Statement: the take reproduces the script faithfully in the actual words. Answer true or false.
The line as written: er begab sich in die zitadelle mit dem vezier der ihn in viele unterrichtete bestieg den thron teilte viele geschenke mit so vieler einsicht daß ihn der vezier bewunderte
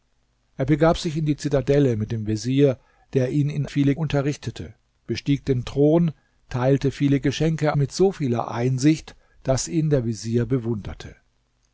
true